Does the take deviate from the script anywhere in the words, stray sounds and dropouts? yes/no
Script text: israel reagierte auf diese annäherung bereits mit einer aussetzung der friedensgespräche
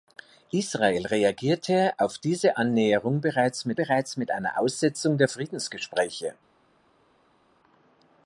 yes